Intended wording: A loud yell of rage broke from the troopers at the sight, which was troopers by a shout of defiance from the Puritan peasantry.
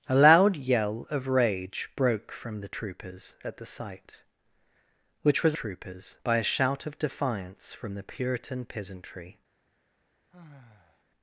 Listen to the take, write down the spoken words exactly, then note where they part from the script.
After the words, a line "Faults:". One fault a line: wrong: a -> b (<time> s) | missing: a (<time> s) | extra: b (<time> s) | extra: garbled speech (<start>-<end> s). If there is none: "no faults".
A loud yell of rage broke from the troopers at the sight, which was troopers by a shout of defiance from the Puritan peasantry.
Faults:
no faults